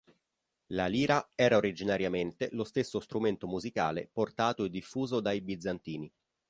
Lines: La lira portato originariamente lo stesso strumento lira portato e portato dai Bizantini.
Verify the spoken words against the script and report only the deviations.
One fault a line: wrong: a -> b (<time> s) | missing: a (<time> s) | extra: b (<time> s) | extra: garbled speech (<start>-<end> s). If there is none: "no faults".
wrong: portato -> era (1.4 s)
wrong: lira -> musicale (3.5 s)
wrong: portato -> diffuso (4.7 s)